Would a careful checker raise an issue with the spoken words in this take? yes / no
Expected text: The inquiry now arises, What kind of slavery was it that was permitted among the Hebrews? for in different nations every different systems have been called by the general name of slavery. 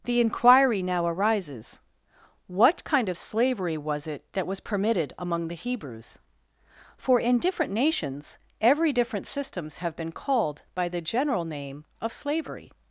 no